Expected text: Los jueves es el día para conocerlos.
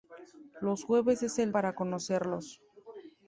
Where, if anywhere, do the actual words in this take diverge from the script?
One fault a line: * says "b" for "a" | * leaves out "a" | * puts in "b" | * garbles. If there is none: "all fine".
* leaves out "día"